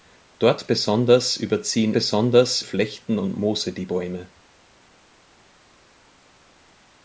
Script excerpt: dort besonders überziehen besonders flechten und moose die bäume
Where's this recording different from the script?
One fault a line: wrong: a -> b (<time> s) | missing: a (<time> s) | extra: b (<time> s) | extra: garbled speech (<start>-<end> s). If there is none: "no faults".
no faults